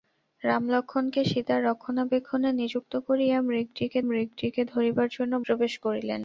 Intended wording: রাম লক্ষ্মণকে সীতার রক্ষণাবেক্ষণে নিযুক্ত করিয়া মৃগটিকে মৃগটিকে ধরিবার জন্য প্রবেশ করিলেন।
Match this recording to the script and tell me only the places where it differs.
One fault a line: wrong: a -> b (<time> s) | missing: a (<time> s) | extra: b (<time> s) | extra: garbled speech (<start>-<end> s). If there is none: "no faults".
no faults